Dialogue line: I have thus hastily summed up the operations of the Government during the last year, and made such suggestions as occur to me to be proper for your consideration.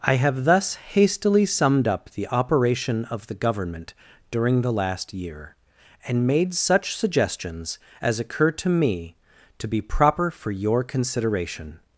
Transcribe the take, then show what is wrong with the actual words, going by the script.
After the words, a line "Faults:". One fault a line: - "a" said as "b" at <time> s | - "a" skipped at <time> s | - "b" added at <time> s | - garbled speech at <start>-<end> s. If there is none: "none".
I have thus hastily summed up the operation of the Government during the last year, and made such suggestions as occur to me to be proper for your consideration.
Faults:
- "operations" said as "operation" at 2.3 s